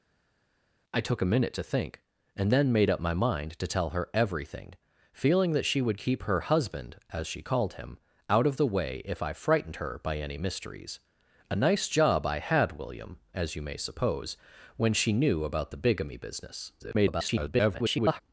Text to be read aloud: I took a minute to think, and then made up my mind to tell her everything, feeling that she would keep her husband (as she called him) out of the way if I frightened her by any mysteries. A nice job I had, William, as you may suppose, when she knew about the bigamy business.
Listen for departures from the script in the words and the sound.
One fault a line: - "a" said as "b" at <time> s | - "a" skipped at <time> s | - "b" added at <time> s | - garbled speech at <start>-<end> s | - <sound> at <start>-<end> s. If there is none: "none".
- garbled speech at 16.8-18.2 s